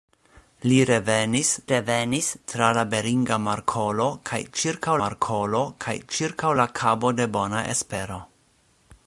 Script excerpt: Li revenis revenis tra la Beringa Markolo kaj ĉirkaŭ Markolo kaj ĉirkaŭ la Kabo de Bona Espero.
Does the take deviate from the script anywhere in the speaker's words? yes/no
no